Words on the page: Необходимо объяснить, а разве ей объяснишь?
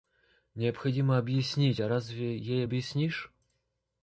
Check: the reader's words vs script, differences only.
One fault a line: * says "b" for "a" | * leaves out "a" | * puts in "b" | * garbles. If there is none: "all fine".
all fine